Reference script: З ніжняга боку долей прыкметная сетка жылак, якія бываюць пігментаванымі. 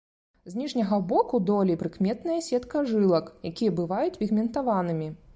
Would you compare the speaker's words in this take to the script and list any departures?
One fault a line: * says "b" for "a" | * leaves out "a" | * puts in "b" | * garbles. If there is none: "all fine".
all fine